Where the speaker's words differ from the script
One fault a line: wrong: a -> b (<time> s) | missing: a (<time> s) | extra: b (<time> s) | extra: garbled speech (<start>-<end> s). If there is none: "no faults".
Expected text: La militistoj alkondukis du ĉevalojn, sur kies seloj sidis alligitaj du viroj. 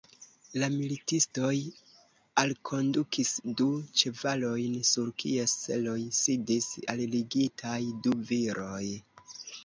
no faults